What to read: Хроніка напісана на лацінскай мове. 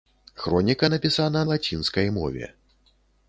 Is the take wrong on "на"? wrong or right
wrong